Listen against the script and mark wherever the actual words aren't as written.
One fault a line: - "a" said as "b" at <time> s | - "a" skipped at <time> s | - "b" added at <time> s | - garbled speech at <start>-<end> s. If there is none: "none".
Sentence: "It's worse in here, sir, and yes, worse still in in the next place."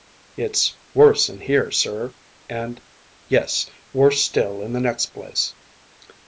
- "in" skipped at 4.7 s